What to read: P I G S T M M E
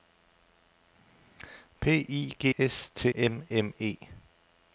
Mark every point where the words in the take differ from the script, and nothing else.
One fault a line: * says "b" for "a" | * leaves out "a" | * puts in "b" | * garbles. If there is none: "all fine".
all fine